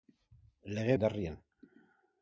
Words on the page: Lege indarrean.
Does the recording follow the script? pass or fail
pass